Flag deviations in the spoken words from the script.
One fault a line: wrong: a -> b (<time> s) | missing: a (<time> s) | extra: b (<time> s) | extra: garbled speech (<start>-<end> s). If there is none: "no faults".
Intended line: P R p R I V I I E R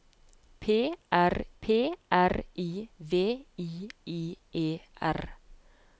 no faults